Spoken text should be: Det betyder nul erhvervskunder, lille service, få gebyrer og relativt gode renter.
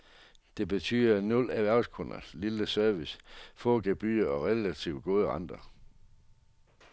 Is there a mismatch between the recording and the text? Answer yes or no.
no